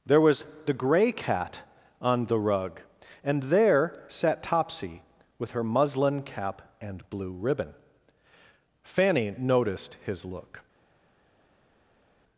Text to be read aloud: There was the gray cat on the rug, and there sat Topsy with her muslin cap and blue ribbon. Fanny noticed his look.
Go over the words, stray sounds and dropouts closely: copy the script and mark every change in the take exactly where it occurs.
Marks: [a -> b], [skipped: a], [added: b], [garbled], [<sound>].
There was the gray cat on the rug, and there sat Topsy with her muslin cap and blue ribbon. Fanny noticed his look.